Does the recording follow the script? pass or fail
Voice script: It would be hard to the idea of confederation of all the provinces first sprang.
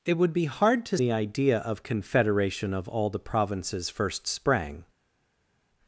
pass